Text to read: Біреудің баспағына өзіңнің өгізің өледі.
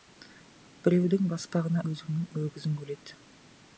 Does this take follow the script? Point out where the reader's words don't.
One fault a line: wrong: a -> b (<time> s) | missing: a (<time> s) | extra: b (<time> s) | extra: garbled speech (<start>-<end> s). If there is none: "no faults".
no faults